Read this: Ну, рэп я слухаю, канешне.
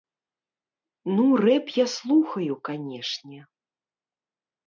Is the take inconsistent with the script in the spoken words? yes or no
no